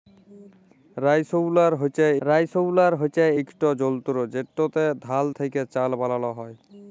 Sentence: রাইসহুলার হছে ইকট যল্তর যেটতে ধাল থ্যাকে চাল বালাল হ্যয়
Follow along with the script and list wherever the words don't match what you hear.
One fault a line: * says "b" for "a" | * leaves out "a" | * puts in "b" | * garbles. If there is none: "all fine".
* puts in "রাইসহুলার হছে"